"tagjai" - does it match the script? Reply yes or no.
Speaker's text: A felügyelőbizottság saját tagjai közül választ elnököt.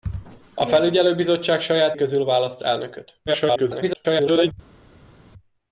no